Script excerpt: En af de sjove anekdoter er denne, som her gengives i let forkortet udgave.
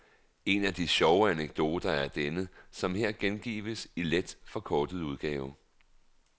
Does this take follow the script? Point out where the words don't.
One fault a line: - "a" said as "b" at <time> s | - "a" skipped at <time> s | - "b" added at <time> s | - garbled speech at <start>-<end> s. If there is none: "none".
none